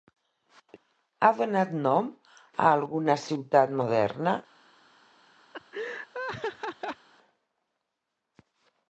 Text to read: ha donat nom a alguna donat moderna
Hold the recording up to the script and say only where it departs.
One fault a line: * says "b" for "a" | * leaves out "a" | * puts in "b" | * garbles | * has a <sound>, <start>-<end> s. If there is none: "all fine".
* says "ciutat" for "donat"
* has a laugh, 5.5-7.1 s